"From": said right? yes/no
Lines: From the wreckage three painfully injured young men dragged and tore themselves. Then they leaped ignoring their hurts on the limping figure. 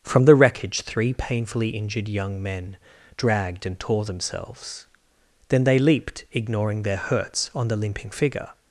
yes